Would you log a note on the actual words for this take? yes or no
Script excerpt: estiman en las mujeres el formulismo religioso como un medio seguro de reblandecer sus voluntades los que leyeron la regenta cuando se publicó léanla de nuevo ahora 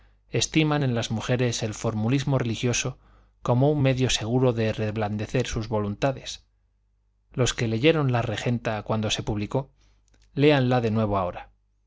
no